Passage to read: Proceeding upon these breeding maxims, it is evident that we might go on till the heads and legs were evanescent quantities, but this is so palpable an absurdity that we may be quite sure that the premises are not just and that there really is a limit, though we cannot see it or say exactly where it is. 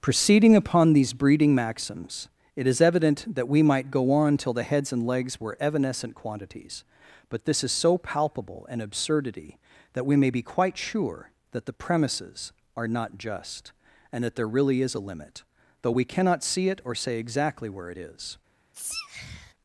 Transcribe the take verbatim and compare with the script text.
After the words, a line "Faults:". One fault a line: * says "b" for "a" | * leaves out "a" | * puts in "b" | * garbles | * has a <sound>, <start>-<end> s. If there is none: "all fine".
Proceeding upon these breeding maxims, it is evident that we might go on till the heads and legs were evanescent quantities, but this is so palpable an absurdity that we may be quite sure that the premises are not just and that there really is a limit, though we cannot see it or say exactly where it is.
Faults:
* has a sneeze, 18.7-19.5 s